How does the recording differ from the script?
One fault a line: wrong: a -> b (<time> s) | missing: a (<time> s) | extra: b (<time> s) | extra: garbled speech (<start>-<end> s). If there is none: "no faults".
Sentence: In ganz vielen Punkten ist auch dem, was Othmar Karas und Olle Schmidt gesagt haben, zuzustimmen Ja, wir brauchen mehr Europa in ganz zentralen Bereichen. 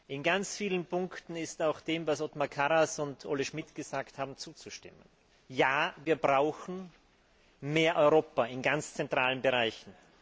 no faults